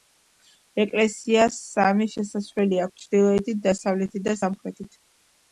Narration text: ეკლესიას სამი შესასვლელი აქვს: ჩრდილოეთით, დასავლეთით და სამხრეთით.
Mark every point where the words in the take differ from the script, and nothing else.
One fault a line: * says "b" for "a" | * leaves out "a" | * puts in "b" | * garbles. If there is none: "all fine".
all fine